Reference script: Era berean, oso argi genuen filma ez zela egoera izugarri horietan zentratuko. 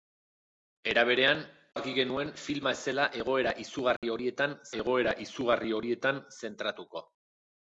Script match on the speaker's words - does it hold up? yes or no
no